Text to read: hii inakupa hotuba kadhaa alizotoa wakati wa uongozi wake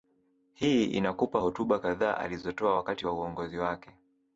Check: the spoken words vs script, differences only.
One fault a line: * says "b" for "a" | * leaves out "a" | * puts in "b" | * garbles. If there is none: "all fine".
all fine